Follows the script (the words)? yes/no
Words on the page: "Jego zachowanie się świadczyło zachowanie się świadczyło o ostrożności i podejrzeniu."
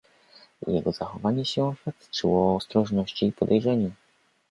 no